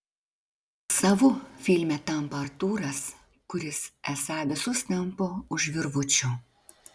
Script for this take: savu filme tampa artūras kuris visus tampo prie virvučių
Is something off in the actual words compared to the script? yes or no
yes